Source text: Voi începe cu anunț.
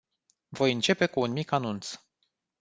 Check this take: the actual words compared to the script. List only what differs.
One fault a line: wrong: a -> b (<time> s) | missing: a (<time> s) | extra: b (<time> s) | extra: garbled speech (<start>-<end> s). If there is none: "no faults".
extra: un mic (1.2 s)